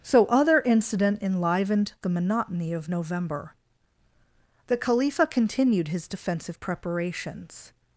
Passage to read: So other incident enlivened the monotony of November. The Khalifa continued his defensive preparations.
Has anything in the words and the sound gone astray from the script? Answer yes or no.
no